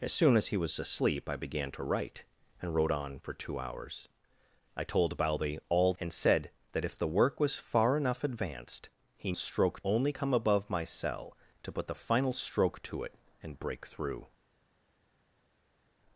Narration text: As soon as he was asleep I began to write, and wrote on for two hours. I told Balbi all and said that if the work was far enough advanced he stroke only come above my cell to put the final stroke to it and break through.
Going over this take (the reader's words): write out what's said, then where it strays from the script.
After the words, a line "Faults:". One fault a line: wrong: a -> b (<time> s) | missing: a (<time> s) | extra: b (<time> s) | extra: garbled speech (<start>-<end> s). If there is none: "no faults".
As soon as he was asleep I began to write, and wrote on for two hours. I told Balbi all and said that if the work was far enough advanced he stroke only come above my cell to put the final stroke to it and break through.
Faults:
no faults